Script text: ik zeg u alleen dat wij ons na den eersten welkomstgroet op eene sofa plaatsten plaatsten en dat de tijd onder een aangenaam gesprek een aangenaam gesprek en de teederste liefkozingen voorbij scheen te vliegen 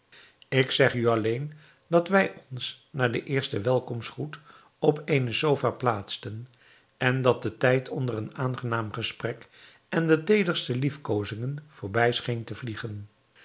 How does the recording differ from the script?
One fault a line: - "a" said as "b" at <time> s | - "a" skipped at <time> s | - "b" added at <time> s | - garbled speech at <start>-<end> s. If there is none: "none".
- "plaatsten" skipped at 6.5 s
- "een aangenaam gesprek" skipped at 9.5 s